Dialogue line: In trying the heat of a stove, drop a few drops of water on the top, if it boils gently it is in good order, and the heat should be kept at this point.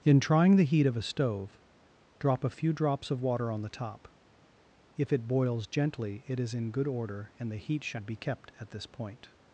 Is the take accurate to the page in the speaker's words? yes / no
yes